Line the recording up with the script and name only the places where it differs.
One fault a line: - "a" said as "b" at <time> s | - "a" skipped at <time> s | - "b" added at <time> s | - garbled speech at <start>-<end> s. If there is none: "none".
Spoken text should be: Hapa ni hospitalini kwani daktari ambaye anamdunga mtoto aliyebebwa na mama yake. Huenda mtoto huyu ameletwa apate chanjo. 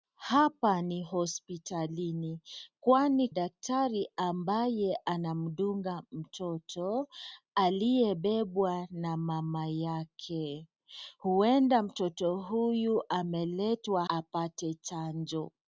none